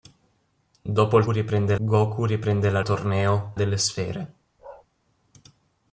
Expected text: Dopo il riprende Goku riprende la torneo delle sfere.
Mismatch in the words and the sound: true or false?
true